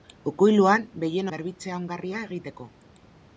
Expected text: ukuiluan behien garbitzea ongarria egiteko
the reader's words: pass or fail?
pass